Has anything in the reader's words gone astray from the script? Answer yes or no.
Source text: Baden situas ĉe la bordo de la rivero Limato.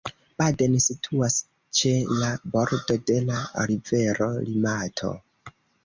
no